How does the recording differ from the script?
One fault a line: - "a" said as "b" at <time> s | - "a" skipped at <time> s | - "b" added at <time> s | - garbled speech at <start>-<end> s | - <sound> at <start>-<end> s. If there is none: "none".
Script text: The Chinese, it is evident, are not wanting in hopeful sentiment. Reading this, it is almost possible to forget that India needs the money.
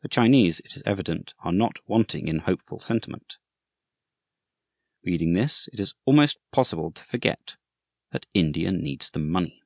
none